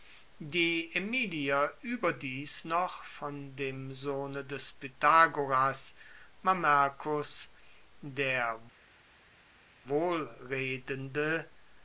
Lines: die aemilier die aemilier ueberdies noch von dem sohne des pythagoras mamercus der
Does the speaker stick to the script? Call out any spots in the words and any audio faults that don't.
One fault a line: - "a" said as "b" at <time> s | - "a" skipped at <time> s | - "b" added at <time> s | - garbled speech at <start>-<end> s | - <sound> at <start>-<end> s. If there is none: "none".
- "die aemilier" skipped at 1.8 s